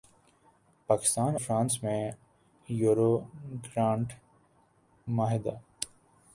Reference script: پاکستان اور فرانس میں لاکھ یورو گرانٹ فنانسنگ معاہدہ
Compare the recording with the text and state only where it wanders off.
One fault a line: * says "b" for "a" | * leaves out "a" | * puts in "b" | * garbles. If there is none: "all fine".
* leaves out "اور"
* leaves out "لاکھ"
* leaves out "فنانسنگ"